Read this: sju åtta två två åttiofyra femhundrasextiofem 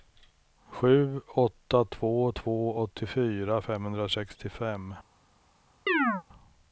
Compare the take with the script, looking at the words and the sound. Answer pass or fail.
fail